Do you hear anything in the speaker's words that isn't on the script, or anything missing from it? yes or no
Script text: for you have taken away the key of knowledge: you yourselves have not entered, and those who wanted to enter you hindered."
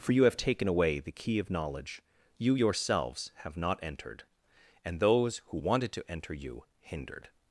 no